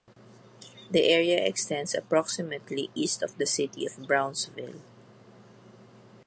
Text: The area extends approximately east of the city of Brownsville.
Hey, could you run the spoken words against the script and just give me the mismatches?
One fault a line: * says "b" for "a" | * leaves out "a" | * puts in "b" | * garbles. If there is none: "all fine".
all fine